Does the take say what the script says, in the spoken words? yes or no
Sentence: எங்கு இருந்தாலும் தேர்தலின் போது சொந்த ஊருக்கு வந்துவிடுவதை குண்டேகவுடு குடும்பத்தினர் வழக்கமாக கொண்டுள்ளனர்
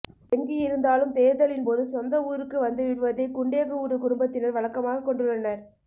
yes